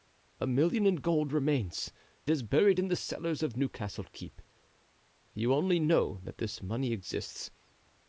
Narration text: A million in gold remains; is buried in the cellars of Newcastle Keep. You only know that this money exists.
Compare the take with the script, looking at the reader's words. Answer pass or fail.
pass